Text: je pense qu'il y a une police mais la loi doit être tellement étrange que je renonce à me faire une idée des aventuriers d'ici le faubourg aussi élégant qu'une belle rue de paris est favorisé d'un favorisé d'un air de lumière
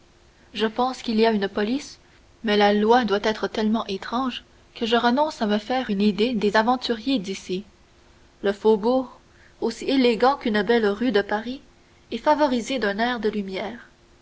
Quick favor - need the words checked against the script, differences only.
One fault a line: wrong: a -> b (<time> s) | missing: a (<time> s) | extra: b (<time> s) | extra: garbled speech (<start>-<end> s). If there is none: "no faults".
missing: favorisé d'un (13.0 s)